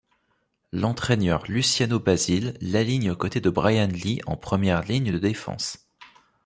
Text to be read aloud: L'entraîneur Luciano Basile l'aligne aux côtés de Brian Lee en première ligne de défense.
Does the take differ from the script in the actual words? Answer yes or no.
no